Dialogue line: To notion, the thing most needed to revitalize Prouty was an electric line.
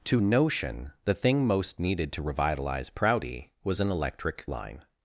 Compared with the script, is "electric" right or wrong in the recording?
right